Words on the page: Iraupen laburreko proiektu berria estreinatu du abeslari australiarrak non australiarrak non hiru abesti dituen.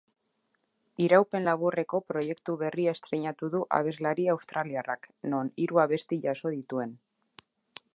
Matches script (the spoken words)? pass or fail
fail